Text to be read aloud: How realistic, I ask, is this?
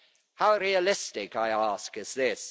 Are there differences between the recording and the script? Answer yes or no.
no